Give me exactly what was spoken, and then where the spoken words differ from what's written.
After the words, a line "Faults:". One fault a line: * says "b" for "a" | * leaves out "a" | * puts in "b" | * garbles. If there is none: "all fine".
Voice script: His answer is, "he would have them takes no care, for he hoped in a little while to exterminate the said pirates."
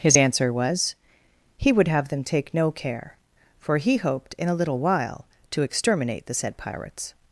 His answer was, "he would have them take no care, for he hoped in a little while to exterminate the said pirates."
Faults:
* says "was" for "is"
* says "take" for "takes"